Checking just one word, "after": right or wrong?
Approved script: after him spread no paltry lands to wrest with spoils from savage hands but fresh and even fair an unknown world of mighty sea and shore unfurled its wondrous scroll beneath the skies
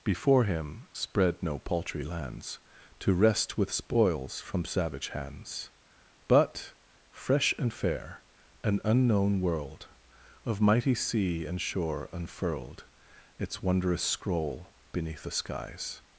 wrong